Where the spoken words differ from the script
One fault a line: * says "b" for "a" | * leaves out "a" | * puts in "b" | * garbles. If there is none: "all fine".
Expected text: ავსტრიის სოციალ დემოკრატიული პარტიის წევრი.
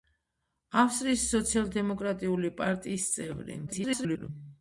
* garbles